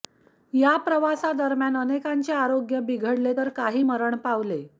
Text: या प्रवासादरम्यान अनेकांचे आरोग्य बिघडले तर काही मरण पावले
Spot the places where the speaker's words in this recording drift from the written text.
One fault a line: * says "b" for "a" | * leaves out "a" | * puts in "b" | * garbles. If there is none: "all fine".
all fine